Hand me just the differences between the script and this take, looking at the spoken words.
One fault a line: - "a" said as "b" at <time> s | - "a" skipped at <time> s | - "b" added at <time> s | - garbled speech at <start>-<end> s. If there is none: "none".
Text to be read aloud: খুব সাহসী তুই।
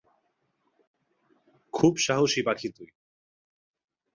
- "পাখি" added at 2.4 s